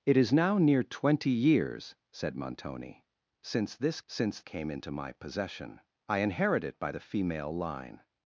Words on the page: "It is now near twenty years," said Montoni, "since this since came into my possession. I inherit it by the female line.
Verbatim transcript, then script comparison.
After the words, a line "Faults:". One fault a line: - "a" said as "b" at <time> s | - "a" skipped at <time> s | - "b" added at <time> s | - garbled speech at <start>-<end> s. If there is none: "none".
"It is now near twenty years," said Montoni, "since this since came into my possession. I inherit it by the female line.
Faults:
none